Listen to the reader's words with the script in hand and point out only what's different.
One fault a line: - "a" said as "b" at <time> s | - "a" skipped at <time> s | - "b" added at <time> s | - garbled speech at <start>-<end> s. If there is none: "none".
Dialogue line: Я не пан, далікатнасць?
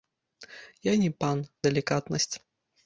none